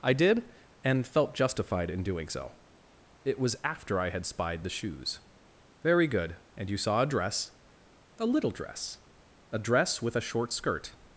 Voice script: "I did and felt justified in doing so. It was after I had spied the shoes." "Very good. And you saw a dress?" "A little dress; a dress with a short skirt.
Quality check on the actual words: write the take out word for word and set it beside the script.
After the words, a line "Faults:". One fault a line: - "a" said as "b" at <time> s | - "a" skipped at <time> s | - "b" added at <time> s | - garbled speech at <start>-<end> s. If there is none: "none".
"I did and felt justified in doing so. It was after I had spied the shoes." "Very good. And you saw a dress?" "A little dress; a dress with a short skirt.
Faults:
none